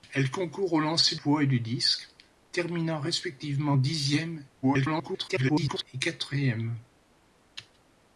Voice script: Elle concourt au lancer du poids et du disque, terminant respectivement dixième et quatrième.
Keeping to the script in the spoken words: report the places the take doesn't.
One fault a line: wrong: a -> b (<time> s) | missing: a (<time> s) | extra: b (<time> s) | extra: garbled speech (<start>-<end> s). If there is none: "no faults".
missing: du (1.1 s)
extra: garbled speech (4.6-5.9 s)